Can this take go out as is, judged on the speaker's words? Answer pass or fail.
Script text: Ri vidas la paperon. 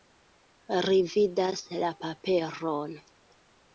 pass